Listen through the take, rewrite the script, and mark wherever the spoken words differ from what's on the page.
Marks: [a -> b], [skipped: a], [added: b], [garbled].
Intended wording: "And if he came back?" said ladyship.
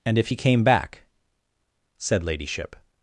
"And if he came back?" said ladyship.